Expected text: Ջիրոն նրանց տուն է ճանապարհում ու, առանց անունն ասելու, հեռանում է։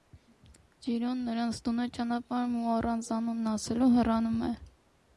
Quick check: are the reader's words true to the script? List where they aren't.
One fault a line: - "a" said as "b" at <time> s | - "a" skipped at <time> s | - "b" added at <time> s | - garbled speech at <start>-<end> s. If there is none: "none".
none